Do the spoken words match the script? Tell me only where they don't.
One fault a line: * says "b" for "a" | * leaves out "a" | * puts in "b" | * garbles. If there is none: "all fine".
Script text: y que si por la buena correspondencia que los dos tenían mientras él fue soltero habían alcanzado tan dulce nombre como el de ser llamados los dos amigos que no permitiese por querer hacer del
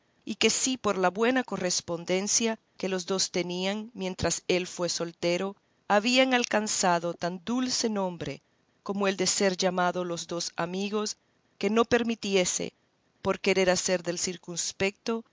all fine